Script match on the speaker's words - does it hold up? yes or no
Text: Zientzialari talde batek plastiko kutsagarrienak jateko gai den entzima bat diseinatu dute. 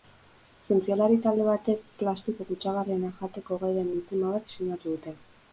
yes